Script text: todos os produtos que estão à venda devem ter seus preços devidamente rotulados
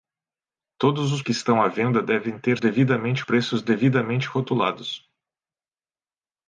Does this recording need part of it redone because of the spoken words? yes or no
yes